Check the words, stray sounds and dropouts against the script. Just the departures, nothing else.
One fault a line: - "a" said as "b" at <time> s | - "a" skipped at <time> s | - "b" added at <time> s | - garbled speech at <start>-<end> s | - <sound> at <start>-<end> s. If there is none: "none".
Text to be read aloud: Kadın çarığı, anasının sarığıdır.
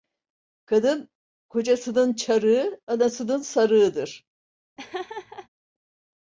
- "kocasının" added at 1.5 s
- laugh at 4.8-5.5 s